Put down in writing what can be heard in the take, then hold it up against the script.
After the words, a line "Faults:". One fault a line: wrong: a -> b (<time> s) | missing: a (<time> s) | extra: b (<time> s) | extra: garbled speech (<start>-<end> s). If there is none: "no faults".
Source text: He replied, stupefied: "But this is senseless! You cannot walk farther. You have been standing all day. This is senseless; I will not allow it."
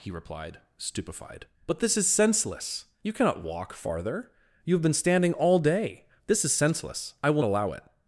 He replied, stupefied: "But this is senseless! You cannot walk farther. You have been standing all day. This is senseless; I will allow it."
Faults:
missing: not (7.4 s)